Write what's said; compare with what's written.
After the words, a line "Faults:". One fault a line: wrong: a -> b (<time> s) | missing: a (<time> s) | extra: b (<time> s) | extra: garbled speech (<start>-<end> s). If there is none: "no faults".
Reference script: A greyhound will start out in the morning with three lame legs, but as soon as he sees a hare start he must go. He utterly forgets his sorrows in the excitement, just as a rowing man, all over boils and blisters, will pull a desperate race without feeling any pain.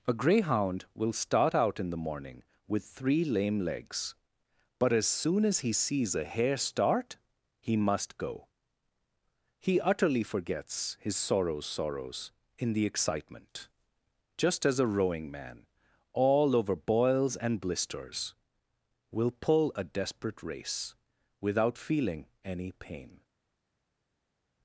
A greyhound will start out in the morning with three lame legs, but as soon as he sees a hare start he must go. He utterly forgets his sorrows sorrows in the excitement, just as a rowing man, all over boils and blisters, will pull a desperate race without feeling any pain.
Faults:
extra: sorrows (11.7 s)